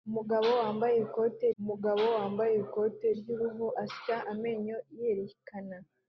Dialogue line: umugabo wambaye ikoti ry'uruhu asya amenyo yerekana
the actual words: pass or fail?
fail